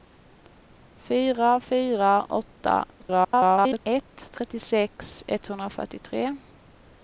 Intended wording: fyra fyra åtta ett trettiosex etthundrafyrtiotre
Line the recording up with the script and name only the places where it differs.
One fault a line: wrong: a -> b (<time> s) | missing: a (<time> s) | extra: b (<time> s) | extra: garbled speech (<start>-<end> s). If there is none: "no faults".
extra: garbled speech (3.0-3.8 s)